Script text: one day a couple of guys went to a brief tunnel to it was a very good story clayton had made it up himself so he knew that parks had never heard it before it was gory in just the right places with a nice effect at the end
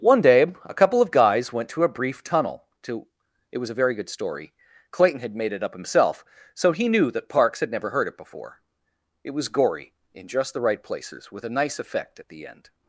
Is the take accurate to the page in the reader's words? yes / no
yes